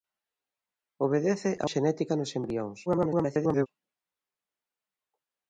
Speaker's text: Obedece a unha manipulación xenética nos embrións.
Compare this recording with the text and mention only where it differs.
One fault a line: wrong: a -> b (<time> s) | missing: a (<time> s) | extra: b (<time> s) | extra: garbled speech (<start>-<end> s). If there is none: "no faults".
missing: unha manipulación (1.6 s)
extra: garbled speech (2.9-3.7 s)